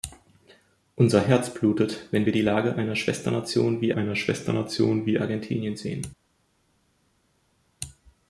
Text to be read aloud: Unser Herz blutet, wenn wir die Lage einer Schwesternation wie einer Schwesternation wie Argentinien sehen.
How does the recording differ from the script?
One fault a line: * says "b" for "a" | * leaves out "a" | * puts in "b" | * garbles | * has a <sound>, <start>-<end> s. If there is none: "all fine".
all fine